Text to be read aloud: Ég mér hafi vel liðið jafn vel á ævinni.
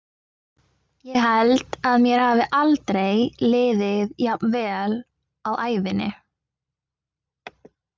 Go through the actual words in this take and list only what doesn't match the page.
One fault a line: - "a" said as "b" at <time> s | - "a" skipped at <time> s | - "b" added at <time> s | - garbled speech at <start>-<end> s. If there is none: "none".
- "held að" added at 1.2 s
- "vel" said as "aldrei" at 2.6 s